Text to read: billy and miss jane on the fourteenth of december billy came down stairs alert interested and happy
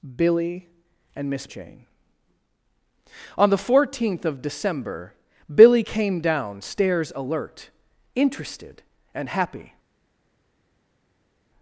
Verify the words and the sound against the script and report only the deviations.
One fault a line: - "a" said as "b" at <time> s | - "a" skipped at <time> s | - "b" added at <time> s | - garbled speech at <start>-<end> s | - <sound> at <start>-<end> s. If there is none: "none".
none